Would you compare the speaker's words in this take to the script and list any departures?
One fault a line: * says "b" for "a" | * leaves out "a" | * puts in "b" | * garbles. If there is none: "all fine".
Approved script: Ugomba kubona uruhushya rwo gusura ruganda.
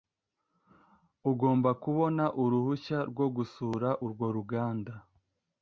* puts in "urwo"